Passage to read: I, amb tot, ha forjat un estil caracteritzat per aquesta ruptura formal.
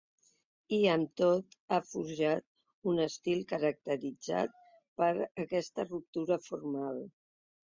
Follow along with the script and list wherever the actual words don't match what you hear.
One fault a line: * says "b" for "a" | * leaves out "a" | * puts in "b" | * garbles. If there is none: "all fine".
all fine